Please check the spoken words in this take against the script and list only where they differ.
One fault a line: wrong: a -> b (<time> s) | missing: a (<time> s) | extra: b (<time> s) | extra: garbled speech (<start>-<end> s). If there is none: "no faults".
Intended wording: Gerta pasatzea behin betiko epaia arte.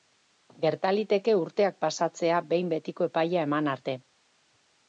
extra: liteke urteak (0.9 s)
extra: eman (3.5 s)